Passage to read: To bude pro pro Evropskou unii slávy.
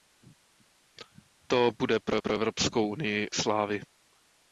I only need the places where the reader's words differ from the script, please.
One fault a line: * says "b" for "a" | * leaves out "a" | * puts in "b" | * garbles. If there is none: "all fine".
all fine